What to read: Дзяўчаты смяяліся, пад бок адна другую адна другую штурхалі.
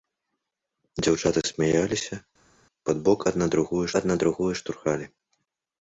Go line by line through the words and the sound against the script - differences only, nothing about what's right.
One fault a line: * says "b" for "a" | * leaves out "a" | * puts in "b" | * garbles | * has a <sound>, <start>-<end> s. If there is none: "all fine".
all fine